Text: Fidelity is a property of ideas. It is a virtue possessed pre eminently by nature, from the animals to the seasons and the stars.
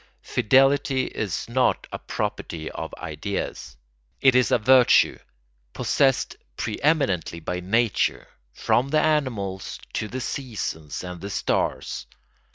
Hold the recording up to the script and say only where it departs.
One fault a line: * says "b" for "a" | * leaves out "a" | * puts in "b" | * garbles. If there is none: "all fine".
* puts in "not"